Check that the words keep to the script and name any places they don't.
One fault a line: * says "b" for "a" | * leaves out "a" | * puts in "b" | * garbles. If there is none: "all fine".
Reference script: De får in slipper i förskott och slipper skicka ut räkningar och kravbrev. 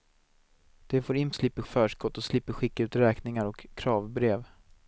all fine